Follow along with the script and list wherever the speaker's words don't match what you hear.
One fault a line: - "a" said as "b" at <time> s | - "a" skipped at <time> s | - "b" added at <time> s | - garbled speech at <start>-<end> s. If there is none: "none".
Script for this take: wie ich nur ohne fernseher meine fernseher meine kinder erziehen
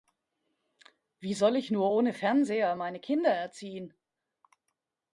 - "soll" added at 1.4 s
- "fernseher meine" skipped at 3.0 s